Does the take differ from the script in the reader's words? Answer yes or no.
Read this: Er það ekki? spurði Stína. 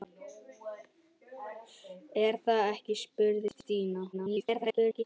yes